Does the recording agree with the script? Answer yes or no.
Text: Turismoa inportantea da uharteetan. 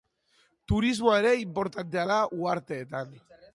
no